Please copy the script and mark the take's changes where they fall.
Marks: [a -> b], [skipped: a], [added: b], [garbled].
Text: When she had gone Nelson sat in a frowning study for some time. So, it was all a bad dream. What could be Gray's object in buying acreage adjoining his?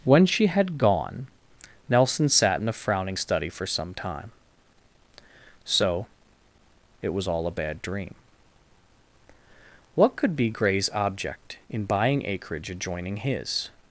When she had gone Nelson sat in a frowning study for some time. So, it was all a bad dream. What could be Gray's object in buying acreage adjoining his?